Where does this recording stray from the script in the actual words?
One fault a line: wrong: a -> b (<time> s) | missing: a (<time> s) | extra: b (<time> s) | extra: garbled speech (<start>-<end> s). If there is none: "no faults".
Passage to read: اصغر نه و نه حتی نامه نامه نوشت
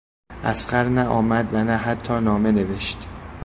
extra: آمد (1.1 s)
missing: نامه (2.5 s)